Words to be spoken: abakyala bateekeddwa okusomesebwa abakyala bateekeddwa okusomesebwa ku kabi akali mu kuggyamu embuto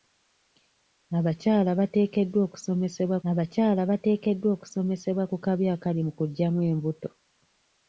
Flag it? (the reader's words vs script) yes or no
no